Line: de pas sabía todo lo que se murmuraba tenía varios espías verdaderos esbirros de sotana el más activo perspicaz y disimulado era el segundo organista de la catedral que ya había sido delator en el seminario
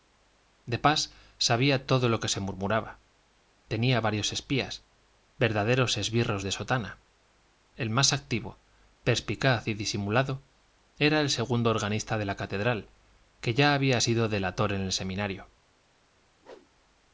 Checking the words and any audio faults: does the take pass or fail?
fail